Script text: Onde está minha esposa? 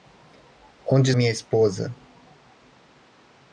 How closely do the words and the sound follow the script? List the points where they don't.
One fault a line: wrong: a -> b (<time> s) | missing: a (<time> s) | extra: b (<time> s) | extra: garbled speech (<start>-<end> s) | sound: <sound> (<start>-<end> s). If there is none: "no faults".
missing: está (1.1 s)